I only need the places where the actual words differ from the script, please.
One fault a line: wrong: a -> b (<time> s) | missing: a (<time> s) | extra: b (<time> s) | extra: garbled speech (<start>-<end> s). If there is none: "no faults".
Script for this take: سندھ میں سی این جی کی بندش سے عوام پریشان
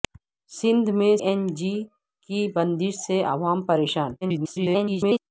missing: سی (1.1 s)
extra: garbled speech (4.2-5.2 s)